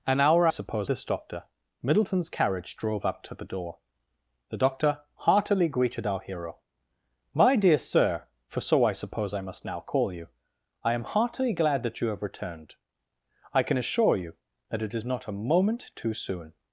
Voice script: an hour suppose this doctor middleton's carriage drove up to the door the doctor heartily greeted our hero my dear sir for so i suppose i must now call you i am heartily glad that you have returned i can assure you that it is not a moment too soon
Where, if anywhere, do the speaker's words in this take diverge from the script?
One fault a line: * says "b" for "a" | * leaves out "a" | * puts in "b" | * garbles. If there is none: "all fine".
all fine